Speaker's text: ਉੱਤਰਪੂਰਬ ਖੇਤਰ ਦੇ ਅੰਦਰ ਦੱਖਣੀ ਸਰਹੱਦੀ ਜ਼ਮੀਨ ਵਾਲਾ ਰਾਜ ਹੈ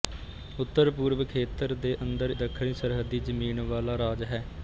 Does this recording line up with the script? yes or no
yes